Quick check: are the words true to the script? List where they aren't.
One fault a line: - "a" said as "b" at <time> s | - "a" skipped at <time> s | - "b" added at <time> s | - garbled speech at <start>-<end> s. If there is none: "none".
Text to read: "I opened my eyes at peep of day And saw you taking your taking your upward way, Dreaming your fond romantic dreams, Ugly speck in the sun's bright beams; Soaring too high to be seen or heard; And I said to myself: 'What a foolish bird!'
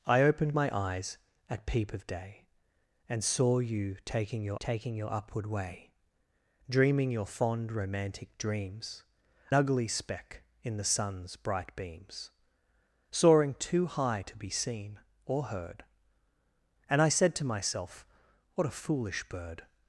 none